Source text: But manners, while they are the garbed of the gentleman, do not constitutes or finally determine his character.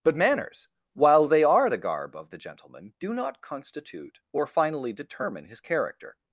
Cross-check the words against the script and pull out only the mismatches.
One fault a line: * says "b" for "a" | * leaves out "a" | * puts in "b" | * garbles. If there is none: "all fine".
* says "garb" for "garbed"
* says "constitute" for "constitutes"